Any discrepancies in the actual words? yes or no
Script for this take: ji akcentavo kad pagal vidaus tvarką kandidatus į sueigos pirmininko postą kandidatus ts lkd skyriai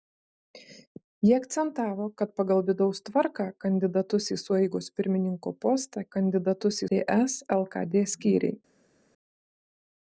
no